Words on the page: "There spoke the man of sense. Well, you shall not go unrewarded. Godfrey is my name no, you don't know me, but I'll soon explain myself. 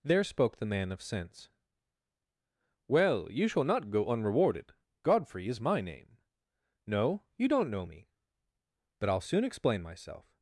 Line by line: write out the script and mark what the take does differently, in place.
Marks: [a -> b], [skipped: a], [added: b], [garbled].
"There spoke the man of sense. Well, you shall not go unrewarded. Godfrey is my name no, you don't know me, but I'll soon explain myself.